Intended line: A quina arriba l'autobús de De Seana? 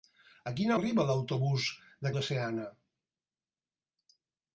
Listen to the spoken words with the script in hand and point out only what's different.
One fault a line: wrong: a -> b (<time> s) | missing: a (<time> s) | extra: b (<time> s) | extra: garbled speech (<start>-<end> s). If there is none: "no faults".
no faults